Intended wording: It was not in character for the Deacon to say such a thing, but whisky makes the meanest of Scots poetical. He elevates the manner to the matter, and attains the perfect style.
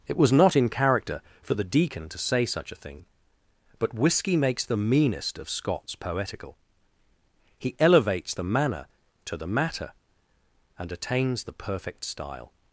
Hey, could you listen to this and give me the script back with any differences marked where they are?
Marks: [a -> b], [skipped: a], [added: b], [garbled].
It was not in character for the Deacon to say such a thing, but whisky makes the meanest of Scots poetical. He elevates the manner to the matter, and attains the perfect style.